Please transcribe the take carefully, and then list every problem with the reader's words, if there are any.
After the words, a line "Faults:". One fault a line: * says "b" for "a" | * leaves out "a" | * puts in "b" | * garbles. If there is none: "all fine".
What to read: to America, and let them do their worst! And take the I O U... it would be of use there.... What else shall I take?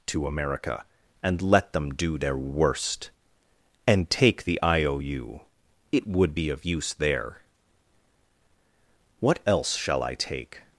to America, and let them do their worst! And take the I O U... it would be of use there.... What else shall I take?
Faults:
all fine